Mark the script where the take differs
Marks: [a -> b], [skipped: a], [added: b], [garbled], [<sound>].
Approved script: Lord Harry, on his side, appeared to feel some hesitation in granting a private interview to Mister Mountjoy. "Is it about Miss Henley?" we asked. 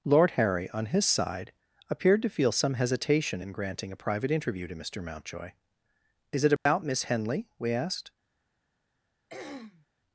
Lord Harry, on his side, appeared to feel some hesitation in granting a private interview to Mister Mountjoy. "Is it about [dropout] Miss Henley?" we asked. [throat clearing]